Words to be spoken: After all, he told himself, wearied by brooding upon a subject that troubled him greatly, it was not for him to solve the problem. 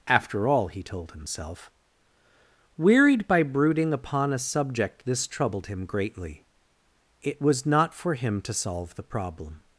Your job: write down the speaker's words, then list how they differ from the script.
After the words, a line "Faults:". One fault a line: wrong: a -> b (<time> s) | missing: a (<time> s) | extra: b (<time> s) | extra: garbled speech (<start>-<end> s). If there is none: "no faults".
After all, he told himself, wearied by brooding upon a subject this troubled him greatly, it was not for him to solve the problem.
Faults:
wrong: that -> this (5.1 s)